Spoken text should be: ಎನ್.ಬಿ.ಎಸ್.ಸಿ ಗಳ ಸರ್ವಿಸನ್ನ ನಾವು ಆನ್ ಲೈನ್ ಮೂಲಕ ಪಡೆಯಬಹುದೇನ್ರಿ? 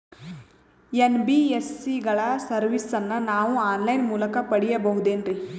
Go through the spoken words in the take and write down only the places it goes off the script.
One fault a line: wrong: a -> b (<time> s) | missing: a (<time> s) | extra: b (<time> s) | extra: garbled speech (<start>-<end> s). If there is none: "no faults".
no faults